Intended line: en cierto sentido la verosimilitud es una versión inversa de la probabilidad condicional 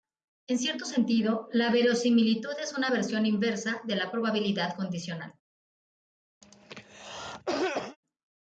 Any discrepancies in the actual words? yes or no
no